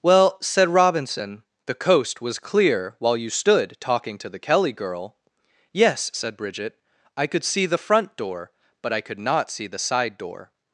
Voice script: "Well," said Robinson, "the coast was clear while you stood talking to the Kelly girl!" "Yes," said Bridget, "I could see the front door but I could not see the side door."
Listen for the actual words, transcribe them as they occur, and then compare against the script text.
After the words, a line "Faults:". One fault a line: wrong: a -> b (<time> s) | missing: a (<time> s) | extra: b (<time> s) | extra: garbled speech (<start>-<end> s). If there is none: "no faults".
"Well," said Robinson, "the coast was clear while you stood talking to the Kelly girl!" "Yes," said Bridget, "I could see the front door but I could not see the side door."
Faults:
no faults